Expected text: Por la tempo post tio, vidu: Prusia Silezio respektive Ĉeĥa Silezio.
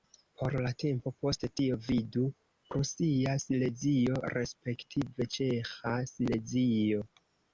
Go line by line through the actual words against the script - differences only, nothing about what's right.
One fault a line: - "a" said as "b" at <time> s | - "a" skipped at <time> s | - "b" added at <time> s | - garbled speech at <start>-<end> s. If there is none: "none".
none